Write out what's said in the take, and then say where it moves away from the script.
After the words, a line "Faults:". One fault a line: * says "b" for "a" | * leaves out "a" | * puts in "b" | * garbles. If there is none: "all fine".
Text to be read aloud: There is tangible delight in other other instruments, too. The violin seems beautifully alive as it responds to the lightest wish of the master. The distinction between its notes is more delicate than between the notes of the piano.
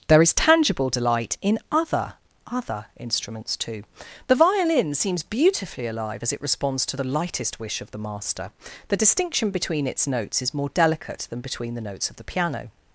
There is tangible delight in other other instruments, too. The violin seems beautifully alive as it responds to the lightest wish of the master. The distinction between its notes is more delicate than between the notes of the piano.
Faults:
all fine